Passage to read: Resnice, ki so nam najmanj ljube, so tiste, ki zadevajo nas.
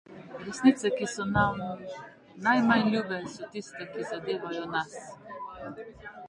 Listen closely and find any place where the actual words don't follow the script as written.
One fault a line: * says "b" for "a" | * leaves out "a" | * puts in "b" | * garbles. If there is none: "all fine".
all fine